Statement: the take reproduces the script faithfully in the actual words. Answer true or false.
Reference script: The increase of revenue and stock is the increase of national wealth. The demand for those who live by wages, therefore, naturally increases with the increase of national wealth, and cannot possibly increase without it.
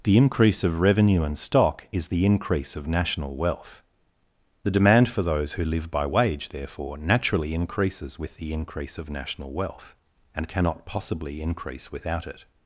false